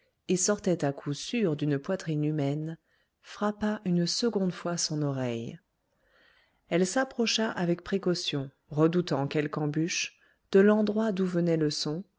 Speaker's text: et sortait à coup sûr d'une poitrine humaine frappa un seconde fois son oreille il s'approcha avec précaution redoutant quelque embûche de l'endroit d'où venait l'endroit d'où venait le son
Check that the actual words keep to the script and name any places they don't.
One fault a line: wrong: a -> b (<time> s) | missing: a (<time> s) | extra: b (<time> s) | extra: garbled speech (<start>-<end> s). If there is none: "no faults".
wrong: un -> une (3.9 s)
wrong: il -> elle (6.7 s)
missing: l'endroit d'où venait (11.6 s)